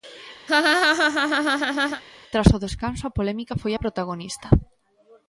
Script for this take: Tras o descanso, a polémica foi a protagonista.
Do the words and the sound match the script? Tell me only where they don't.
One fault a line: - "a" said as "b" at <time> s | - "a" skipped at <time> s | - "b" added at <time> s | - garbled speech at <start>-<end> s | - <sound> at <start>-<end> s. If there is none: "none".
- laugh at 0.5-2.0 s